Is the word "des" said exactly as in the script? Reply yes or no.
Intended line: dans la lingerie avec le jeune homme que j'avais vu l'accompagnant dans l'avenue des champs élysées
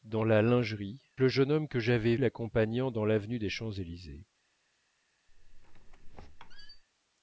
yes